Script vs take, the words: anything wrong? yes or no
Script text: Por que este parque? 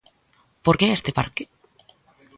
no